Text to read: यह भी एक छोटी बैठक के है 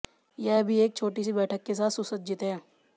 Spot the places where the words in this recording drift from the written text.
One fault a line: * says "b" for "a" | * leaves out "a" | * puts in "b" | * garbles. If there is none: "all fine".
* puts in "सी"
* puts in "साथ सुसज्जित"